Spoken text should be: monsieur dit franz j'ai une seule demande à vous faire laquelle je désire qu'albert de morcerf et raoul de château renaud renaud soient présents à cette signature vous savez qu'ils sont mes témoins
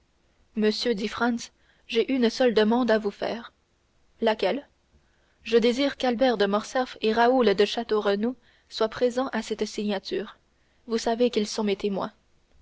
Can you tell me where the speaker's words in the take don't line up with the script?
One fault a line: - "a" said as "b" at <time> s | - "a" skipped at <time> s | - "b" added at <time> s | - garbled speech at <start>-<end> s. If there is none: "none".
- "renaud" skipped at 8.3 s